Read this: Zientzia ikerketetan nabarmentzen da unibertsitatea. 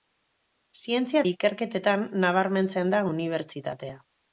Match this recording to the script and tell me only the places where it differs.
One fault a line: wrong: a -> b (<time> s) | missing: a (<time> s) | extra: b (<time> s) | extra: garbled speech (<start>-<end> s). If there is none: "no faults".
no faults